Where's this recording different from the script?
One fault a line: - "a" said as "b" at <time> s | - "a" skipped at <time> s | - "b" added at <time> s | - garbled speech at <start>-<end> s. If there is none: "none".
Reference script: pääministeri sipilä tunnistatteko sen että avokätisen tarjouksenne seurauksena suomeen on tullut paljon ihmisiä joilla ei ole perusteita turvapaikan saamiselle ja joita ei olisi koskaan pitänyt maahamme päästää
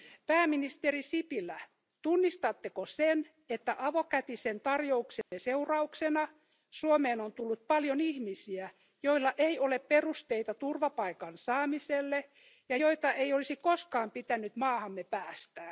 none